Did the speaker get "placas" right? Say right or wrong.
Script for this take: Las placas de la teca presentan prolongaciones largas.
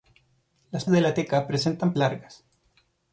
wrong